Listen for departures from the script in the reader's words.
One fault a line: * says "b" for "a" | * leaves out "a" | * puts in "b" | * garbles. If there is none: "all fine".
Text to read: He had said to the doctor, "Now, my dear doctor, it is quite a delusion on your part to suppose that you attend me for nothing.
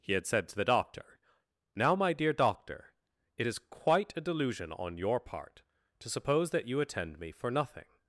all fine